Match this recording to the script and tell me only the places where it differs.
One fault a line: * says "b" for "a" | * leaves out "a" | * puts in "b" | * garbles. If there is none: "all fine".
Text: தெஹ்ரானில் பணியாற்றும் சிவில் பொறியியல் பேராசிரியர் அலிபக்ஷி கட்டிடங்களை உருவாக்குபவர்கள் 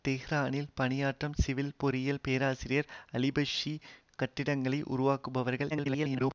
* garbles